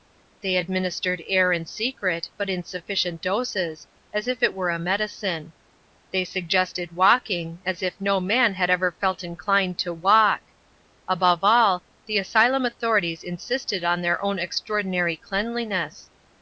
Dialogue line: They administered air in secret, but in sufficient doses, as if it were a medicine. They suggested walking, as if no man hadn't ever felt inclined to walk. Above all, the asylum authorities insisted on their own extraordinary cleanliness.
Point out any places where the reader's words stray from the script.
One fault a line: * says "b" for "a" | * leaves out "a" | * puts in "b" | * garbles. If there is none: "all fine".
* says "had" for "hadn't"